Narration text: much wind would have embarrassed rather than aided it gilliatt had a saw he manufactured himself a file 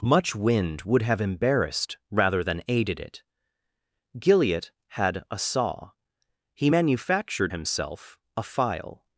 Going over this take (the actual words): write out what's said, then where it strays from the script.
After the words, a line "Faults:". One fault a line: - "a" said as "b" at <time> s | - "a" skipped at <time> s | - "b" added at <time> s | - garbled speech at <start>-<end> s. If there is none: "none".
much wind would have embarrassed rather than aided it gilliatt had a saw he manufactured himself a file
Faults:
none